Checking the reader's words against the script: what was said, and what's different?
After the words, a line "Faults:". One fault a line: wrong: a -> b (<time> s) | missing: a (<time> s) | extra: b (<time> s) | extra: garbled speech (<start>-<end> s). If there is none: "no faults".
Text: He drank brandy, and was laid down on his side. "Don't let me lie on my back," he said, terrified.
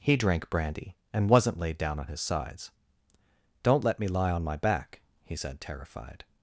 He drank brandy, and wasn't laid down on his sides. "Don't let me lie on my back," he said, terrified.
Faults:
wrong: was -> wasn't (1.3 s)
wrong: side -> sides (2.2 s)